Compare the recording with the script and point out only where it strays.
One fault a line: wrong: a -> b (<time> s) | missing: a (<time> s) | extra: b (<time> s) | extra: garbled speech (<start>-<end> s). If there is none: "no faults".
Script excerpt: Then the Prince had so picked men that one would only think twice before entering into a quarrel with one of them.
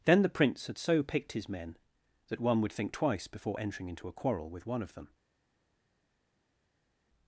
extra: his (1.3 s)
missing: only (2.7 s)